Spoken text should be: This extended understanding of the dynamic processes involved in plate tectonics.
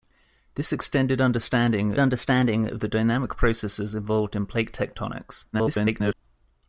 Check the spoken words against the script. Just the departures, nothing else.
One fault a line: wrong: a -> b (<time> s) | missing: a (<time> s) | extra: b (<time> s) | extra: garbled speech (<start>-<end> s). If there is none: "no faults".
extra: understanding (2.0 s)
extra: garbled speech (5.5-6.1 s)